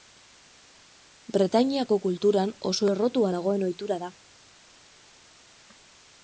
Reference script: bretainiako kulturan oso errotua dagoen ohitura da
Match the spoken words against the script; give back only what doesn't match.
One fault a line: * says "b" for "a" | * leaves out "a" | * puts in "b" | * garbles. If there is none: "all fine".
all fine